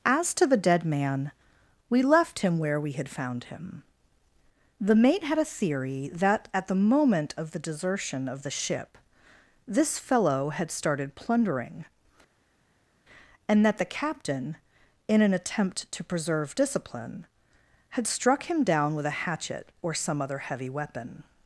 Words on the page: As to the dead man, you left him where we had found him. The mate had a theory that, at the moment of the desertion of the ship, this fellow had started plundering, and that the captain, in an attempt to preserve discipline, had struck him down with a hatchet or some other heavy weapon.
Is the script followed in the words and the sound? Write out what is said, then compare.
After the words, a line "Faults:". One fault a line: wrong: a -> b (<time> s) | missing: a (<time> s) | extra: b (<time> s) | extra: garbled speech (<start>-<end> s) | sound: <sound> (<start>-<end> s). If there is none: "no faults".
As to the dead man, we left him where we had found him. The mate had a theory that, at the moment of the desertion of the ship, this fellow had started plundering, and that the captain, in an attempt to preserve discipline, had struck him down with a hatchet or some other heavy weapon.
Faults:
wrong: you -> we (1.9 s)